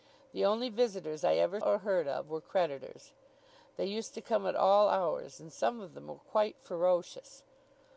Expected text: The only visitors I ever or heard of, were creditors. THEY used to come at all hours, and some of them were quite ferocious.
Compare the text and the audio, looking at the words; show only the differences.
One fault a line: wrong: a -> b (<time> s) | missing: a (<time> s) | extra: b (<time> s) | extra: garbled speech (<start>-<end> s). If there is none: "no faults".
no faults